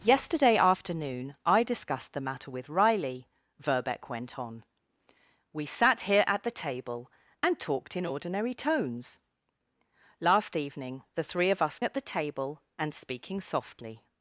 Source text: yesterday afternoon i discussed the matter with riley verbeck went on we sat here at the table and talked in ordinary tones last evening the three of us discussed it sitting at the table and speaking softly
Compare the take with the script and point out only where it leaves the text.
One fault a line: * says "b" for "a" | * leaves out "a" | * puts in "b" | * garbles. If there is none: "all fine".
* leaves out "discussed it sitting"